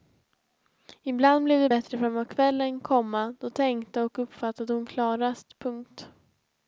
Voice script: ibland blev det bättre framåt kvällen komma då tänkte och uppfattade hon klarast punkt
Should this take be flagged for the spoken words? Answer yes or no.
no